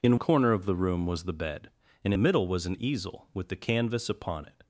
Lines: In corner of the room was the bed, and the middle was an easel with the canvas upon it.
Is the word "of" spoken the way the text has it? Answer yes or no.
yes